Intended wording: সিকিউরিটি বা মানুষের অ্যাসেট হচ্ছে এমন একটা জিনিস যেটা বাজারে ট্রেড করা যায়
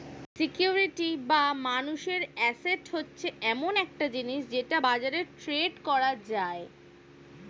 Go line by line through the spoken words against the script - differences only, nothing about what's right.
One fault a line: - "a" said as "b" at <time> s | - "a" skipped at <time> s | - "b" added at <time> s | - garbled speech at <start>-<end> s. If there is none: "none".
none